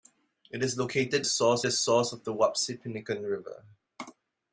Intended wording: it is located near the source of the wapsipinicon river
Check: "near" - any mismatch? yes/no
yes